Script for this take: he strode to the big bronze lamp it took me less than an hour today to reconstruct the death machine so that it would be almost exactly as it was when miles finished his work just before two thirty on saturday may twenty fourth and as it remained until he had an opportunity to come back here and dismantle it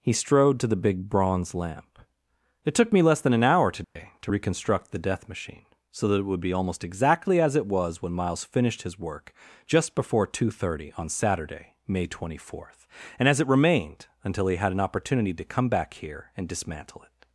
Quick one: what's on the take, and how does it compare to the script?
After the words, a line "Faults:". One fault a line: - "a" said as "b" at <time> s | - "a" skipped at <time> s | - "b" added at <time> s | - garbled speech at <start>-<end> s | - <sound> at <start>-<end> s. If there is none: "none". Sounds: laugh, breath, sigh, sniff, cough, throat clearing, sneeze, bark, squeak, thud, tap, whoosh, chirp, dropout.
he strode to the big bronze lamp it took me less than an hour today to reconstruct the death machine so that it would be almost exactly as it was when miles finished his work just before two thirty on saturday may twenty fourth and as it remained until he had an opportunity to come back here and dismantle it
Faults:
- dropout at 3.8-4.0 s